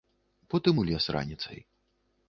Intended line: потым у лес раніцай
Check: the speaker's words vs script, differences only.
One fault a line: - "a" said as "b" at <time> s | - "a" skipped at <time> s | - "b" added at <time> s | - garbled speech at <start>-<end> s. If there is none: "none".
none